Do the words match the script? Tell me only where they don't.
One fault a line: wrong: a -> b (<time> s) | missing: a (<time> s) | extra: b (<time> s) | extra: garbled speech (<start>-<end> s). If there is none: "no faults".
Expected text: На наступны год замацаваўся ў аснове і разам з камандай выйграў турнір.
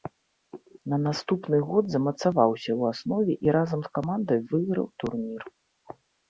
no faults